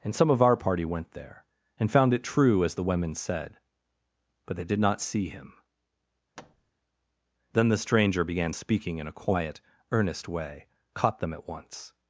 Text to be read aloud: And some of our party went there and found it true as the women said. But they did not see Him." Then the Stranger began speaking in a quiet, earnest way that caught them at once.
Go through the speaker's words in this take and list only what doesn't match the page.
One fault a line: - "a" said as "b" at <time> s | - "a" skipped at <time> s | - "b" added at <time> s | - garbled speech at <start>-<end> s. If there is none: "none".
- "that" skipped at 10.7 s